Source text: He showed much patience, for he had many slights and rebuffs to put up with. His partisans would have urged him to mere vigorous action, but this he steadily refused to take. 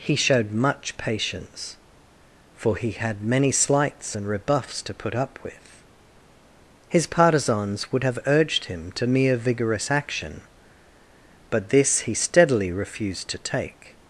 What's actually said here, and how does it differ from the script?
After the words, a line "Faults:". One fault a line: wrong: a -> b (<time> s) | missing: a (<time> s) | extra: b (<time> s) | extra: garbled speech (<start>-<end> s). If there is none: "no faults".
He showed much patience, for he had many slights and rebuffs to put up with. His partisans would have urged him to mere vigorous action, but this he steadily refused to take.
Faults:
no faults